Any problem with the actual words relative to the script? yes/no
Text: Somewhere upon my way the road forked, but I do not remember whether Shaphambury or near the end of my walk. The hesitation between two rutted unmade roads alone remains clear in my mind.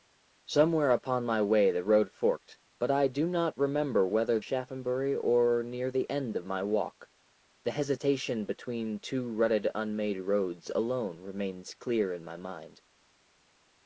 no